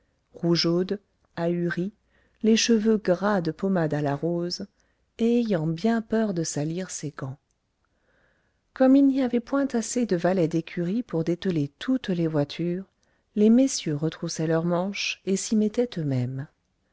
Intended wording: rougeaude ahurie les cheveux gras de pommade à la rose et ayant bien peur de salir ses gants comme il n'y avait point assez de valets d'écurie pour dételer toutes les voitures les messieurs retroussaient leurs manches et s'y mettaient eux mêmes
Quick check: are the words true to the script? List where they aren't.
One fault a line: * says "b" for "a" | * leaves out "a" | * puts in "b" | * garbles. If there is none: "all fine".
all fine